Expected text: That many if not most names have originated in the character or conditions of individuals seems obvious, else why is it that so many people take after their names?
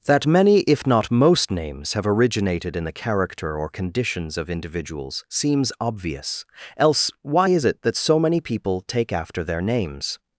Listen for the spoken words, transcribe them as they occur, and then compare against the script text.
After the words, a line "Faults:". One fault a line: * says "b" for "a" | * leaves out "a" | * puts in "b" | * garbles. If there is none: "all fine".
That many if not most names have originated in the character or conditions of individuals seems obvious, else why is it that so many people take after their names?
Faults:
all fine